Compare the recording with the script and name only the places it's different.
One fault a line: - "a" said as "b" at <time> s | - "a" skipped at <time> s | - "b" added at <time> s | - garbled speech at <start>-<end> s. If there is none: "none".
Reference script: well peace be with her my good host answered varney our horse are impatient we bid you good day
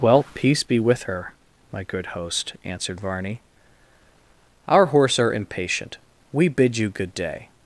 none